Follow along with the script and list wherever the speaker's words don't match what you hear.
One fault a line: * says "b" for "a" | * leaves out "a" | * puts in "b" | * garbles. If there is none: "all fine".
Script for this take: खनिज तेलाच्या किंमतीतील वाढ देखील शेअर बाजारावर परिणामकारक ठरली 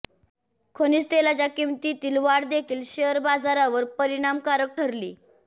all fine